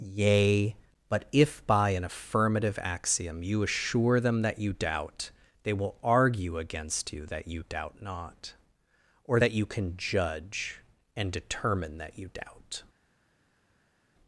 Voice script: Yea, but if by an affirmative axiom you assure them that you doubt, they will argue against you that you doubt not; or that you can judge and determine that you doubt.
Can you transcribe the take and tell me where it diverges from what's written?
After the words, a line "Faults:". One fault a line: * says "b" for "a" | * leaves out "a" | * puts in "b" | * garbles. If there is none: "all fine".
Yea, but if by an affirmative axiom you assure them that you doubt, they will argue against you that you doubt not; or that you can judge and determine that you doubt.
Faults:
all fine